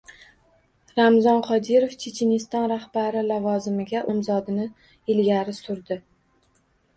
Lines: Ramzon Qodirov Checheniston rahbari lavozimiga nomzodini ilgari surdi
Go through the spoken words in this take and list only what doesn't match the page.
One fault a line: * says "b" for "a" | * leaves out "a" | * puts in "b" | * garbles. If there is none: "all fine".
all fine